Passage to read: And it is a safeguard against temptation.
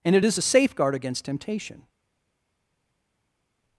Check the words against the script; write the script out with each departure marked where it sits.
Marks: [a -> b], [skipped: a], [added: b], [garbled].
And it is a safeguard against temptation.